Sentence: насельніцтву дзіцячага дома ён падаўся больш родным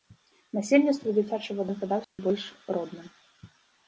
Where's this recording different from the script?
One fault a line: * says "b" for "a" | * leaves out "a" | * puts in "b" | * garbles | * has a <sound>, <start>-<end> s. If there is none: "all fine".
* leaves out "дома"
* has a dropout, 2.0-2.2 s